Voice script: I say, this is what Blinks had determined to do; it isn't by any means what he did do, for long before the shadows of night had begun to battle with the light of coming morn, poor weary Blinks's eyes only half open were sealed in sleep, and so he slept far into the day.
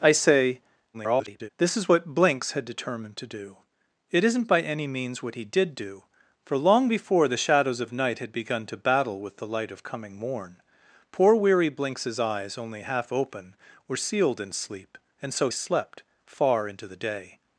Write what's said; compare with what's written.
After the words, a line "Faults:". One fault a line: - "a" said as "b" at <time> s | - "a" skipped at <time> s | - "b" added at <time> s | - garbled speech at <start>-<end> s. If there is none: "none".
I say, [garbled] this is what Blinks had determined to do; it isn't by any means what he did do, for long before the shadows of night had begun to battle with the light of coming morn, poor weary Blinks's eyes only half open were sealed in sleep, and so slept far into the day.
Faults:
- garbled speech at 0.9-1.5 s
- "he" skipped at 15.5 s